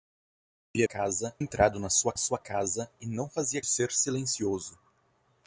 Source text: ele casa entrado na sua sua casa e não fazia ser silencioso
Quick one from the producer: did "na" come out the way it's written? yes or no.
yes